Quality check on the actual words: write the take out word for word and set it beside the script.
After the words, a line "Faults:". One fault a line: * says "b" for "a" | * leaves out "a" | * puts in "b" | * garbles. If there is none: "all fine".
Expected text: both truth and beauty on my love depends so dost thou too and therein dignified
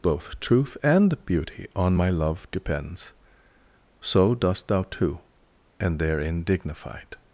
both truth and beauty on my love depends so dost thou too and therein dignified
Faults:
all fine